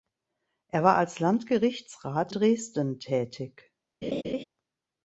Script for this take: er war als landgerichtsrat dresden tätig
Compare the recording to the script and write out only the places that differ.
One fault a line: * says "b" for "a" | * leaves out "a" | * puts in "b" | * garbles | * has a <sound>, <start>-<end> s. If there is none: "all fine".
* has a laugh, 4.0-4.4 s